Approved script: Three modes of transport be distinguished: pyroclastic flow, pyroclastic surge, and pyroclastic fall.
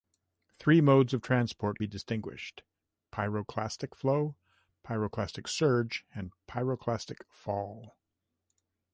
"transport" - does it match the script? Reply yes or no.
yes